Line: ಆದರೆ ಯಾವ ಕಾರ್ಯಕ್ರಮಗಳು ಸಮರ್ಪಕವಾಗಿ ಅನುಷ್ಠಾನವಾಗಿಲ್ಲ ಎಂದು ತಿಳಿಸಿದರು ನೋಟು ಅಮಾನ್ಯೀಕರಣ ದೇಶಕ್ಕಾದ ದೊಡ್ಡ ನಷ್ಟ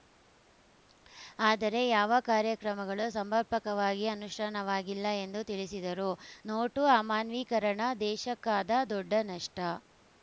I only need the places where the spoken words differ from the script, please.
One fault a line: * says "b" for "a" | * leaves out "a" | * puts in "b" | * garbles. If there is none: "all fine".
all fine